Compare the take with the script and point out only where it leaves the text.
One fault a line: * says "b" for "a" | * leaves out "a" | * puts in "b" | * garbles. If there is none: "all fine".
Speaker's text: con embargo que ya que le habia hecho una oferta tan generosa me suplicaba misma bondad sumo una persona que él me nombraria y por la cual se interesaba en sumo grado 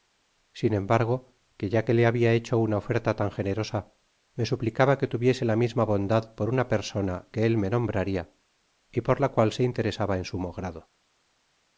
* says "sin" for "con"
* puts in "que tuviese la"
* says "por" for "sumo"